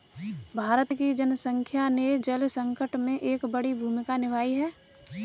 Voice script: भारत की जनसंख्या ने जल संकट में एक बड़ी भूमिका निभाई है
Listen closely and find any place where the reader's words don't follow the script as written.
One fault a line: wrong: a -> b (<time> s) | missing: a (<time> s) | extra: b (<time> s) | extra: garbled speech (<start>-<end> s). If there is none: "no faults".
no faults